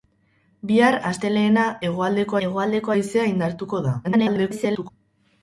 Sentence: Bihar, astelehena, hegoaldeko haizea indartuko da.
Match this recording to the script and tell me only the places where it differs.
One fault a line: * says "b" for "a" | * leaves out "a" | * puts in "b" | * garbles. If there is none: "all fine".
* puts in "hegoaldeko"
* garbles